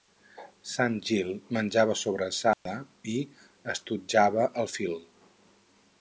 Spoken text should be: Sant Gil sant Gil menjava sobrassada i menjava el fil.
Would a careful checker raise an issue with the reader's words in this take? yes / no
yes